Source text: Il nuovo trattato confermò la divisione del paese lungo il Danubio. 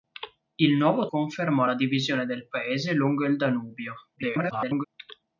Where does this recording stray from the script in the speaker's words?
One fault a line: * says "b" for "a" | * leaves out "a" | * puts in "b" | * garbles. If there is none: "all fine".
* leaves out "trattato"
* garbles